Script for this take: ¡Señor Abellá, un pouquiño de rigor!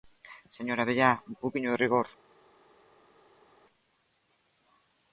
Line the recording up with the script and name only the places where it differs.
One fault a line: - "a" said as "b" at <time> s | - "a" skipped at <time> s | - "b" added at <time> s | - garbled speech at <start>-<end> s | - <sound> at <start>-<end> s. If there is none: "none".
none